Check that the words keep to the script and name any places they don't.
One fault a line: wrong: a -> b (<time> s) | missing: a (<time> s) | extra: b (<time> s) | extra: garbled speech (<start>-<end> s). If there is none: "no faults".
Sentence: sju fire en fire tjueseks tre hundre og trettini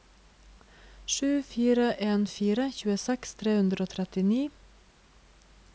no faults